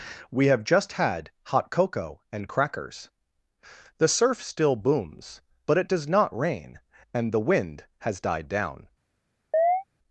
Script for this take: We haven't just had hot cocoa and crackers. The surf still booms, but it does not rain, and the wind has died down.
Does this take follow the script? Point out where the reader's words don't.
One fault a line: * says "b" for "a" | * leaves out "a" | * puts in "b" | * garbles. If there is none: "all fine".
* says "have" for "haven't"